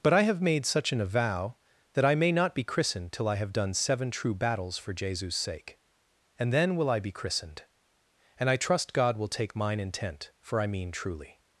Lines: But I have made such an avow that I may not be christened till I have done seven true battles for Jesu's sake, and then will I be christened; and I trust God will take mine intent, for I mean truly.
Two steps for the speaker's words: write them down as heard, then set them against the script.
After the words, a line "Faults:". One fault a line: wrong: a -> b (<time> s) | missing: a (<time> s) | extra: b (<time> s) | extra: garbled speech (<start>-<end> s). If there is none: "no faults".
But I have made such an avow that I may not be christened till I have done seven true battles for Jesu's sake, and then will I be christened; and I trust God will take mine intent, for I mean truly.
Faults:
no faults